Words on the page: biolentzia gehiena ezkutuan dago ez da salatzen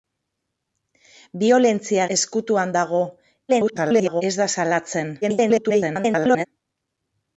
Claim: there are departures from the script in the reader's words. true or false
true